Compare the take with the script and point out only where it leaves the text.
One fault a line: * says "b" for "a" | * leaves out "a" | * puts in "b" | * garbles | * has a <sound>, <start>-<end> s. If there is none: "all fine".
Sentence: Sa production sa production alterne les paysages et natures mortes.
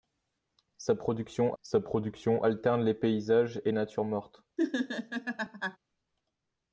* has a laugh, 4.6-5.8 s